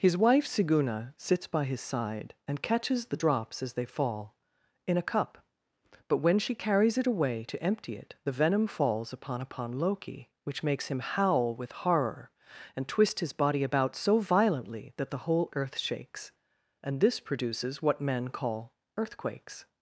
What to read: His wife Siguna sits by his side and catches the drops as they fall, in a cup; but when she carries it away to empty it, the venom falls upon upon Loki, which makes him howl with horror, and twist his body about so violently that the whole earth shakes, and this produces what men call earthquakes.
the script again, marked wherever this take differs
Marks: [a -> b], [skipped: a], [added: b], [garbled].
His wife Siguna sits by his side and catches the drops as they fall, in a cup; but when she carries it away to empty it, the venom falls upon upon Loki, which makes him howl with horror, and twist his body about so violently that the whole earth shakes, and this produces what men call earthquakes.